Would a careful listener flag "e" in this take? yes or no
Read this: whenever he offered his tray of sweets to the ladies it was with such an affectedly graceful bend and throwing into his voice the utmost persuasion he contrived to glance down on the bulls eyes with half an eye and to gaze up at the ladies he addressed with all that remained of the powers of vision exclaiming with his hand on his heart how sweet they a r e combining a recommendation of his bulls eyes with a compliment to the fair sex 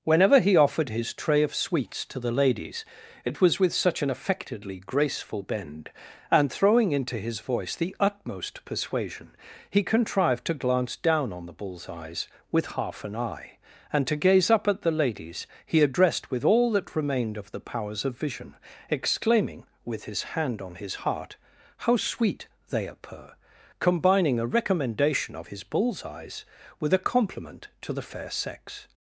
yes